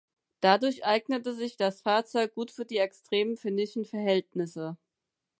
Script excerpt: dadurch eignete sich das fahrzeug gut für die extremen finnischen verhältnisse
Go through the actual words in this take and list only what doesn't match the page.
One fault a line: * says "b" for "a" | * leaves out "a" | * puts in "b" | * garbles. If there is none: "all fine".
all fine